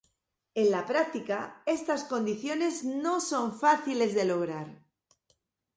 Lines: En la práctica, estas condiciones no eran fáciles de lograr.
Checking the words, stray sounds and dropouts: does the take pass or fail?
fail